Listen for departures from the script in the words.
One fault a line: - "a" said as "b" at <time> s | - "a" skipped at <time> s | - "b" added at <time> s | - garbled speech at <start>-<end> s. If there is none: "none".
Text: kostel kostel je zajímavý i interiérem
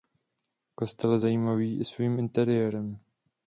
- "kostel" skipped at 1.1 s
- "svým" added at 1.8 s